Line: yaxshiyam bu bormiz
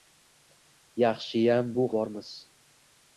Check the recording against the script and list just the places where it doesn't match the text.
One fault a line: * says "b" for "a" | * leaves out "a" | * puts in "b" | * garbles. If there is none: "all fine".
all fine